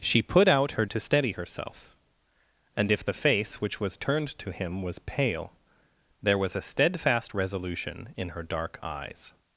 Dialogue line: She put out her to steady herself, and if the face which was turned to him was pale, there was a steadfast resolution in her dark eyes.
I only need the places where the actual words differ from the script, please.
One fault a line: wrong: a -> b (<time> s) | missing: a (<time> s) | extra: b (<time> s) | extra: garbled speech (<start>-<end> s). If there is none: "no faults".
no faults